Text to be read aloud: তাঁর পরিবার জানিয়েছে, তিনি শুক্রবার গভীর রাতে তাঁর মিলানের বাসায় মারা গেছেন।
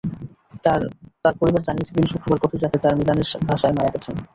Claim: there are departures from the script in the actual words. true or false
false